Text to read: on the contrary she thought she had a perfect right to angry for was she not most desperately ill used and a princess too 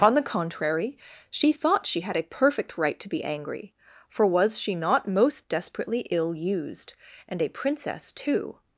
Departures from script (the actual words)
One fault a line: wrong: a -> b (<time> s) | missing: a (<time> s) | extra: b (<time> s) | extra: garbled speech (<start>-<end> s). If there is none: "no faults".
extra: be (3.1 s)